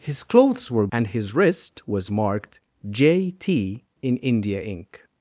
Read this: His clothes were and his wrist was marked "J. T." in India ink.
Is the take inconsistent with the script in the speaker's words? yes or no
no